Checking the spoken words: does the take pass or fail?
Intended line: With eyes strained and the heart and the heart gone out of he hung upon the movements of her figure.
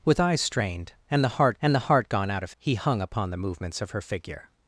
pass